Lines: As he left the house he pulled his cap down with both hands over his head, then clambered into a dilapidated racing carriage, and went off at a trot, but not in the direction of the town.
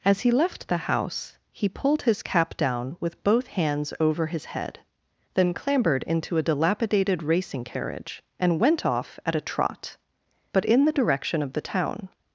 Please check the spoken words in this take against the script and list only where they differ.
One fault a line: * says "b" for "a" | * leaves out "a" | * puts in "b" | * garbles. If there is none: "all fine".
* leaves out "not"